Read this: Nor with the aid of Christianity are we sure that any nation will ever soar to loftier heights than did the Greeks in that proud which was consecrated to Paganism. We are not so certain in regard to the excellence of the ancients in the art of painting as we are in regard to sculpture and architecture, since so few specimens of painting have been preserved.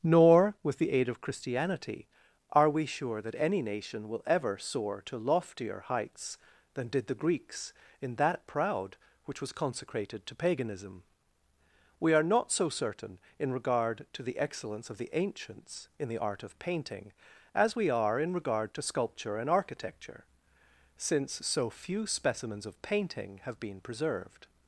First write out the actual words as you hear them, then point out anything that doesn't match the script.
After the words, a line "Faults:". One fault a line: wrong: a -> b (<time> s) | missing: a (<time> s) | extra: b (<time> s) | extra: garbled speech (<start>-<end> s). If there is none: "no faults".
Nor with the aid of Christianity are we sure that any nation will ever soar to loftier heights than did the Greeks in that proud which was consecrated to Paganism. We are not so certain in regard to the excellence of the ancients in the art of painting as we are in regard to sculpture and architecture, since so few specimens of painting have been preserved.
Faults:
no faults